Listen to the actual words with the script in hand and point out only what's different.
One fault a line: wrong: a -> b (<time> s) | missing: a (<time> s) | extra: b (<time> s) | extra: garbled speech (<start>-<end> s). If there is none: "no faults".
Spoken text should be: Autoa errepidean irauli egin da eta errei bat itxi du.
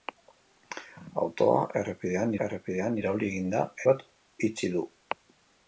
extra: errepidean (2.5 s)
missing: eta errei (3.6 s)